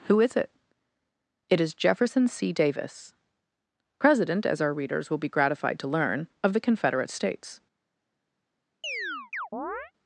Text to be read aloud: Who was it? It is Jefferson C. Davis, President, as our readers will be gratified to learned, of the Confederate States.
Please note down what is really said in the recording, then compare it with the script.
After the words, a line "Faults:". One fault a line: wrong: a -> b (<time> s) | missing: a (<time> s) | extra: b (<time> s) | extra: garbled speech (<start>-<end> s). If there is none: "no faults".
Who is it? It is Jefferson C. Davis, President, as our readers will be gratified to learn, of the Confederate States.
Faults:
wrong: was -> is (0.2 s)
wrong: learned -> learn (5.9 s)